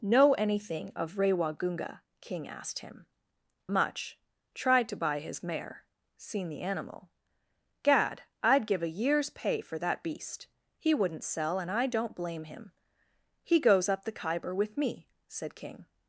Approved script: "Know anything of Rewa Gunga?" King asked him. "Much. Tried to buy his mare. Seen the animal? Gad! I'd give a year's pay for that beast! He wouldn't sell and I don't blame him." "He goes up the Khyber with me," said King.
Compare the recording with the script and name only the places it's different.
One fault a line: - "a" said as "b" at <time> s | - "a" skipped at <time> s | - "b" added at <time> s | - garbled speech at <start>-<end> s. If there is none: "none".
none